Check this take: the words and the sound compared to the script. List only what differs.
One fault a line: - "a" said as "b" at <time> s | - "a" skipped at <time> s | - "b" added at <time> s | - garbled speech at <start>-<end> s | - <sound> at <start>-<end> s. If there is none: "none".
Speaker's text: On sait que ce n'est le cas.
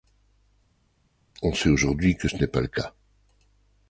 - "aujourd'hui" added at 1.7 s
- "pas" added at 2.5 s